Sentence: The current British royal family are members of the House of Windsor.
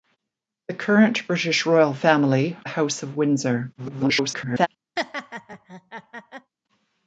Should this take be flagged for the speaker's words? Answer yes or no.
yes